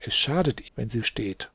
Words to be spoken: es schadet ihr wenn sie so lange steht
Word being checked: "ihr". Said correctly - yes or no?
no